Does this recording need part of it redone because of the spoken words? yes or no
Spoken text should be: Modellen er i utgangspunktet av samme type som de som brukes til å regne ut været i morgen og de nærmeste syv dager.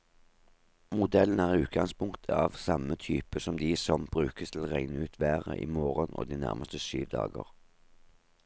no